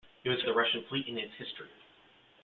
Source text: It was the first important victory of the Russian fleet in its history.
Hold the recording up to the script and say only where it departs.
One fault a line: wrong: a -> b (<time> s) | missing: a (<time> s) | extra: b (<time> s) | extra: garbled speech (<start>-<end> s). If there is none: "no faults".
missing: first important victory (0.5 s)